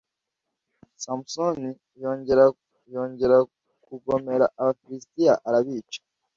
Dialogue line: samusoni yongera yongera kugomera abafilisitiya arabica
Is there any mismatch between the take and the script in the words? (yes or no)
no